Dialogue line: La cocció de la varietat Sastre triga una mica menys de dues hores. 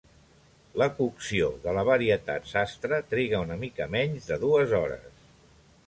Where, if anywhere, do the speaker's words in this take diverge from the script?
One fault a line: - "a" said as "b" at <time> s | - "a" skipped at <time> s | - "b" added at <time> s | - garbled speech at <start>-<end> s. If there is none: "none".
none